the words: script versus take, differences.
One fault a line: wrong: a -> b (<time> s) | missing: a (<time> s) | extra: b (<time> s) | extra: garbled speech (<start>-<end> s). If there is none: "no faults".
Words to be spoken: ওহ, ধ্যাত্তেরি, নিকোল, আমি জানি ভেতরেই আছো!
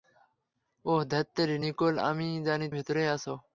no faults